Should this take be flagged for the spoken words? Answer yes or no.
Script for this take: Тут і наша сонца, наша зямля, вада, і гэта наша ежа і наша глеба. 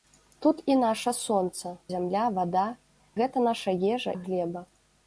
yes